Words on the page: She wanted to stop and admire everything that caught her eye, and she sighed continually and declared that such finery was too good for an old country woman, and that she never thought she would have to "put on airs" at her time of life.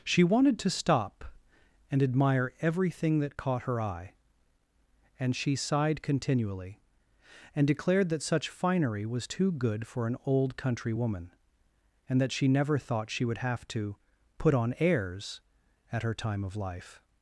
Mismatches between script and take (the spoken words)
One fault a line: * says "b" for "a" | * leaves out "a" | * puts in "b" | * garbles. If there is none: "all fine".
all fine